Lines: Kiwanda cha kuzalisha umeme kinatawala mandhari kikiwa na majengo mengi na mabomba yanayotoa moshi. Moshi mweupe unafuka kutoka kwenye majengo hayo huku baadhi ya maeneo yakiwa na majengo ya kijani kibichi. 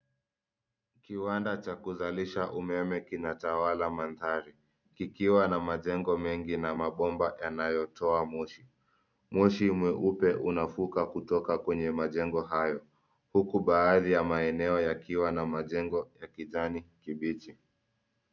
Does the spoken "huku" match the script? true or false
true